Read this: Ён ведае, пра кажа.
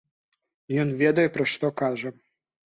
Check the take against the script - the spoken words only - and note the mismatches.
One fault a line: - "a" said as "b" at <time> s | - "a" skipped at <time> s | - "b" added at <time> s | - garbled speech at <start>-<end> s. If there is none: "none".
- "што" added at 1.6 s